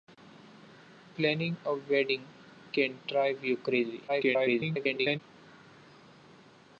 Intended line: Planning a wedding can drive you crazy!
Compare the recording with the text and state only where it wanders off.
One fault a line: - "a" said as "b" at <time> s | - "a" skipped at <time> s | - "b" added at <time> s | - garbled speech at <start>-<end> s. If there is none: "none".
- garbled speech at 4.1-5.2 s